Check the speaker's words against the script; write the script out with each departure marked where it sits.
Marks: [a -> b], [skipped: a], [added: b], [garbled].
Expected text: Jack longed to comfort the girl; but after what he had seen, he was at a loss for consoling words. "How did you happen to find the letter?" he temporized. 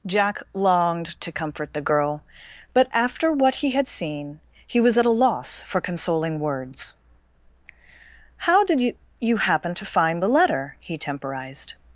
Jack longed to comfort the girl; but after what he had seen, he was at a loss for consoling words. "How did you [added: you] happen to find the letter?" he temporized.